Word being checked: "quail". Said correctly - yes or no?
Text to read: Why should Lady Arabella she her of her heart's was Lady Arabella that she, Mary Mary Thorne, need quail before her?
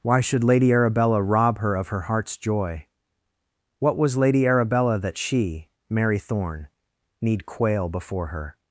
yes